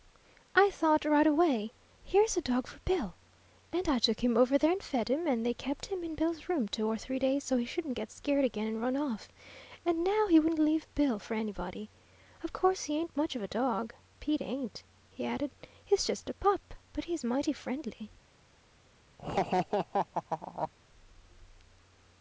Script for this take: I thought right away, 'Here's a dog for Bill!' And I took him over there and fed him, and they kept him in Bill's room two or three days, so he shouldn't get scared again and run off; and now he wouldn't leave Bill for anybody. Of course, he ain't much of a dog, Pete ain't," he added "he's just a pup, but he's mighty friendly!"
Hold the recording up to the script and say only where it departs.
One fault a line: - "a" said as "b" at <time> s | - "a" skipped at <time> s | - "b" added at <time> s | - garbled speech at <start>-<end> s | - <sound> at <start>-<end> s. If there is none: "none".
- laugh at 19.2-20.7 s